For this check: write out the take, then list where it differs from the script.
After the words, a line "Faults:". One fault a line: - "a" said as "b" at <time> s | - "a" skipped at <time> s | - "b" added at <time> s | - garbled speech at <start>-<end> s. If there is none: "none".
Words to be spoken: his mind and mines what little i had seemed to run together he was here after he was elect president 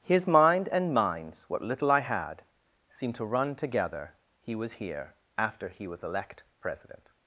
his mind and mines what little i had seemed to run together he was here after he was elect president
Faults:
none